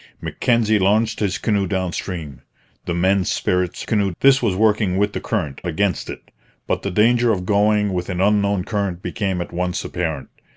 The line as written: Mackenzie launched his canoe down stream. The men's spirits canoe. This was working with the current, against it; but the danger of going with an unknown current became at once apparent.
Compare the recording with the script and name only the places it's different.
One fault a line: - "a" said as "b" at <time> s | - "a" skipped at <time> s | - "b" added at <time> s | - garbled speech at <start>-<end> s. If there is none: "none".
none